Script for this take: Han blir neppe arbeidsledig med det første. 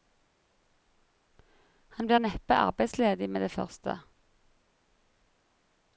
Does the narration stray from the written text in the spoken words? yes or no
no